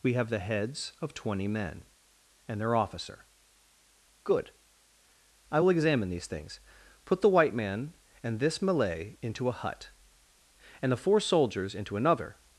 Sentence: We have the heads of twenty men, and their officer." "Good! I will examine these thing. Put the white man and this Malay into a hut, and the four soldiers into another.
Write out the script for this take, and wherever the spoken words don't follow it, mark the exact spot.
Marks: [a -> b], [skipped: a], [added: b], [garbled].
We have the heads of twenty men, and their officer." "Good! I will examine these [thing. -> things] Put the white man and this Malay into a hut, and the four soldiers into another.